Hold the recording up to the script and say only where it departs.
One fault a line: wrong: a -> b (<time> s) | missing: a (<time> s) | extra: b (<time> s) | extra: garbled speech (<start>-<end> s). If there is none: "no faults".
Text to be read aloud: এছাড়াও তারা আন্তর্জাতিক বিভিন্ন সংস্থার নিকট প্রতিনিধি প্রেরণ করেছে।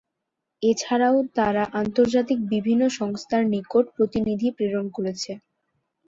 no faults